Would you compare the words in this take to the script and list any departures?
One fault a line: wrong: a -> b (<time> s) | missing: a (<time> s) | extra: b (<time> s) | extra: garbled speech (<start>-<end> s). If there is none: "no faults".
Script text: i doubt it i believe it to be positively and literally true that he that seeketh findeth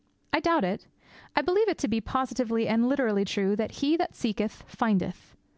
no faults